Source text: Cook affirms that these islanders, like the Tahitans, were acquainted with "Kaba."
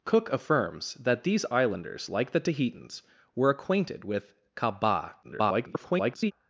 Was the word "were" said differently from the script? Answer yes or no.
no